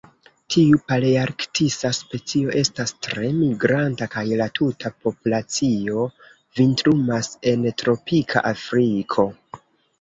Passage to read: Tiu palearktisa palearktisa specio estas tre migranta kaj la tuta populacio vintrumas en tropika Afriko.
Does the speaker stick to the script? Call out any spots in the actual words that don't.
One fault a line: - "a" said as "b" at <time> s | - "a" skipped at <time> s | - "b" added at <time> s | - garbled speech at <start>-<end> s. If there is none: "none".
- "palearktisa" skipped at 1.9 s